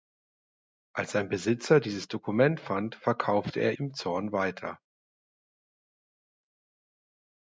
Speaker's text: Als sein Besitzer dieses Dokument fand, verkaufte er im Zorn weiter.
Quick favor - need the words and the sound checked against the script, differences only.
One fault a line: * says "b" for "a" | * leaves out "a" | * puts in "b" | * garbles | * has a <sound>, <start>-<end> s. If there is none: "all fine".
all fine